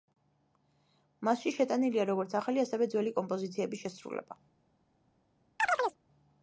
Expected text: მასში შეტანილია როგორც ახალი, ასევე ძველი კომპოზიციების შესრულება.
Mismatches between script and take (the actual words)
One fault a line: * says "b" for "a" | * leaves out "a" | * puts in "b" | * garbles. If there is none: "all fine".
all fine